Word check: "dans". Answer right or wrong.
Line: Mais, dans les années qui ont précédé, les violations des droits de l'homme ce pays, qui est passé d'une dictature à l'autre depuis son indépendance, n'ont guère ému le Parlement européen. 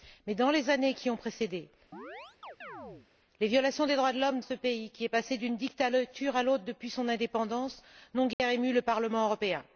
right